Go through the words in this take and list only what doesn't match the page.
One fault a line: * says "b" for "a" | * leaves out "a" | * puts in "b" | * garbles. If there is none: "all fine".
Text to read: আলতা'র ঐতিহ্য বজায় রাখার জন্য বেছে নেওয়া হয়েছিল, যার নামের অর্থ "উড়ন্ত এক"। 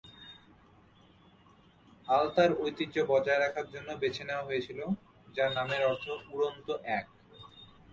all fine